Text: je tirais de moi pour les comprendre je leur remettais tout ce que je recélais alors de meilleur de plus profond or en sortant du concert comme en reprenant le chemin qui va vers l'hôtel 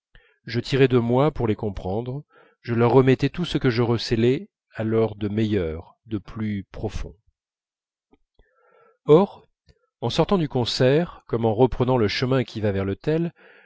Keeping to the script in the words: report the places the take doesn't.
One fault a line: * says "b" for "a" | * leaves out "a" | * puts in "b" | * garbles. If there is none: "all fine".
all fine